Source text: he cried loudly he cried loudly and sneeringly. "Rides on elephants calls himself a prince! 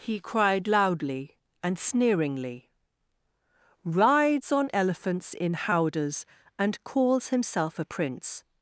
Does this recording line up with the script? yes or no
no